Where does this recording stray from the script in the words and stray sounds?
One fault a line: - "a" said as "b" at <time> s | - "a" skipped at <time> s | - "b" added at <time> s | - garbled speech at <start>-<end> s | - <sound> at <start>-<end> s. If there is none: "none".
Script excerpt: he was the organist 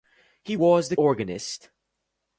none